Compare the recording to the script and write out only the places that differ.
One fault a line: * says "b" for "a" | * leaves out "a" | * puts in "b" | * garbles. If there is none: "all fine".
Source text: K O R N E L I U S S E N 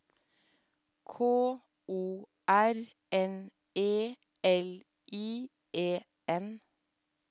* leaves out "U S S"